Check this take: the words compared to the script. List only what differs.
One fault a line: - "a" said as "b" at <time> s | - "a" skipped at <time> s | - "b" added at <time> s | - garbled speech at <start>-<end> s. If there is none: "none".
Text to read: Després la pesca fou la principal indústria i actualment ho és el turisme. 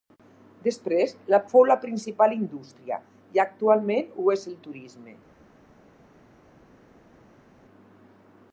- "pesca" skipped at 1.4 s